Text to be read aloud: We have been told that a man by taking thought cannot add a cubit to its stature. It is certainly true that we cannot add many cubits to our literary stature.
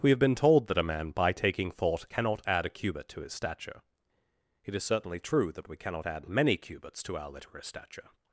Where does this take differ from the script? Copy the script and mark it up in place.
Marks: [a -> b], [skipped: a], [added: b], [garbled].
We have been told that a man by taking thought cannot add a cubit to [its -> his] stature. It is certainly true that we cannot add many cubits to our literary stature.